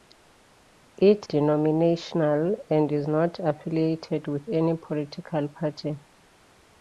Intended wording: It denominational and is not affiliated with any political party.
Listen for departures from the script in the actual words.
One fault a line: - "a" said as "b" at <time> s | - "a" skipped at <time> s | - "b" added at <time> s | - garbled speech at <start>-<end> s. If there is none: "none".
none